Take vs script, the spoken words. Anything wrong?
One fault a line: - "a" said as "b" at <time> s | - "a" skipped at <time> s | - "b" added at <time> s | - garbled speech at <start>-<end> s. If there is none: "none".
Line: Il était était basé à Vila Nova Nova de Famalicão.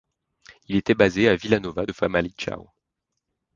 - "était" skipped at 0.9 s
- "Nova" skipped at 1.9 s